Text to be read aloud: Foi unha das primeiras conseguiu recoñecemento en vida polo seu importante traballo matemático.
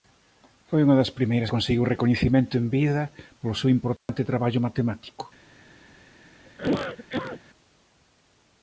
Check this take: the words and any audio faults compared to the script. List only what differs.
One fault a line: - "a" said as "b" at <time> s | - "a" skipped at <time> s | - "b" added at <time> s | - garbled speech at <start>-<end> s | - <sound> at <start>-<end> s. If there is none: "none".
- dropout at 4.0-4.1 s
- cough at 6.5-7.4 s